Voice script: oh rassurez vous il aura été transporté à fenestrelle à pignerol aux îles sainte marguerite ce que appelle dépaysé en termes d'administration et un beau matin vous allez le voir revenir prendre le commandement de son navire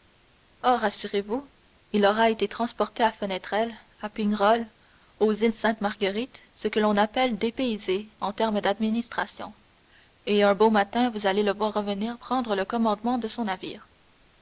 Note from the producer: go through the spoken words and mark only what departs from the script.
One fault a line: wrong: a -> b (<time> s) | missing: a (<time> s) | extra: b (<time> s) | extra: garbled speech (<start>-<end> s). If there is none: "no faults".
extra: l'on (6.8 s)